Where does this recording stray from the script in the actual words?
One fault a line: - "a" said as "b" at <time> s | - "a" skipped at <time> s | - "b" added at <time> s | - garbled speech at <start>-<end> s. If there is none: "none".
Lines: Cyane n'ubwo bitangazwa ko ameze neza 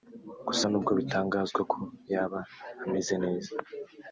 - "Cyane" said as "Gusa" at 0.5 s
- "yaba" added at 2.1 s